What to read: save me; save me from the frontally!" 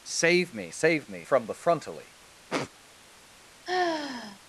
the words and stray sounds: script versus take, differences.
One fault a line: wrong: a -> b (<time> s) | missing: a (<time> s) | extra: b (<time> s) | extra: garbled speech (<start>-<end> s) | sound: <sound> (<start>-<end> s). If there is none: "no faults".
sound: sniff (2.5-2.7 s)
sound: sigh (3.7-4.4 s)